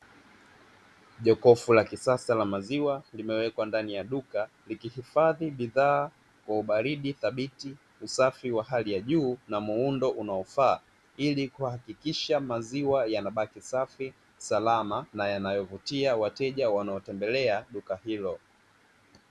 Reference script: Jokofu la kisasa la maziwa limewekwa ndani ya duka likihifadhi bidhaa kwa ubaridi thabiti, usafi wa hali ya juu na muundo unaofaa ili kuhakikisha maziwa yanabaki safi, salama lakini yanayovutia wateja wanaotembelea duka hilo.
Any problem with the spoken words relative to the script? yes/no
yes